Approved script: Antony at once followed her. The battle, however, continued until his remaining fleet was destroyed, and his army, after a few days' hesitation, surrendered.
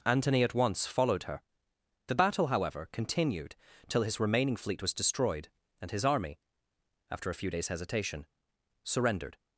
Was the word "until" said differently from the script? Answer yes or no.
yes